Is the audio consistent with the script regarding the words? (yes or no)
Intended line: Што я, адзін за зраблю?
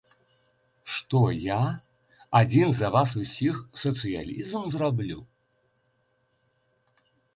no